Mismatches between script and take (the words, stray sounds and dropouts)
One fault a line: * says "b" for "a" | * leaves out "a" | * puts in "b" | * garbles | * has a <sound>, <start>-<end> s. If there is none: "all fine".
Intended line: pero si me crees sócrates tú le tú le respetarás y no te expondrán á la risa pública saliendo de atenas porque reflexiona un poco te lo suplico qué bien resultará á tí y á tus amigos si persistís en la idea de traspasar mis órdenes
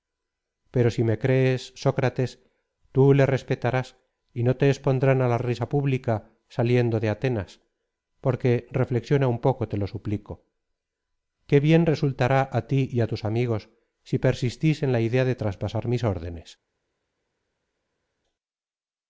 * leaves out "tú le"